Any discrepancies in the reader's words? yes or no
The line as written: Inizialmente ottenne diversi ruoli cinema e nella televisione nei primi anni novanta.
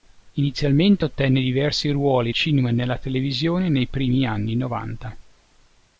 no